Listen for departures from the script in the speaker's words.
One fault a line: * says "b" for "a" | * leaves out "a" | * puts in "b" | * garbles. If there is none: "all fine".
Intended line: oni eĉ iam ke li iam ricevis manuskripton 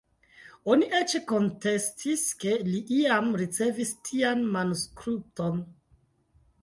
* says "kontestis" for "iam"
* puts in "tian"